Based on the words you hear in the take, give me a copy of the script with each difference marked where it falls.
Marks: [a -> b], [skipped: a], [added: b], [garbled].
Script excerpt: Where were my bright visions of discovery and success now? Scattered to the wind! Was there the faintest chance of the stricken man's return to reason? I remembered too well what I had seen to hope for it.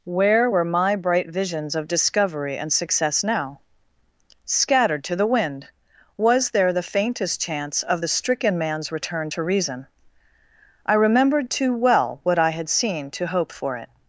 Where were my bright visions of discovery and success now? Scattered to the wind! Was there the faintest chance of the stricken man's return to reason? I remembered too well what I had seen to hope for it.